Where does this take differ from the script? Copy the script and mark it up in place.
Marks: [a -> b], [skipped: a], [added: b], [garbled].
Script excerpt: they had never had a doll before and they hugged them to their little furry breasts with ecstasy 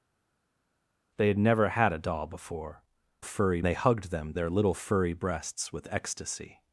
they had never had a doll before [and -> furry] they hugged them [skipped: to] their little furry breasts with ecstasy